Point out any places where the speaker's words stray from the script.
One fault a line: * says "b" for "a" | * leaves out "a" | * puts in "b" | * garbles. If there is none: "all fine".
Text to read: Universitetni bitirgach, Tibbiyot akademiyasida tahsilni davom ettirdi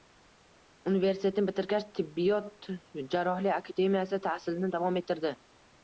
* puts in "jarrohlik"